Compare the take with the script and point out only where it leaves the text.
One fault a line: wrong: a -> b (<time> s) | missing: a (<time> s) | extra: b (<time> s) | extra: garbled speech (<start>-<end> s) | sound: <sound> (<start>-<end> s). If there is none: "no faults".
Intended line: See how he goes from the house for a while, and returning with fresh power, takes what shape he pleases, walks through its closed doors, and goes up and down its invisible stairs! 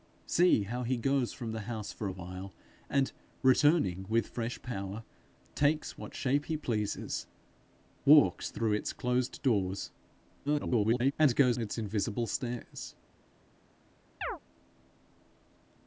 extra: garbled speech (10.5-11.1 s)
missing: up and down (11.6 s)
sound: chirp (14.2-14.4 s)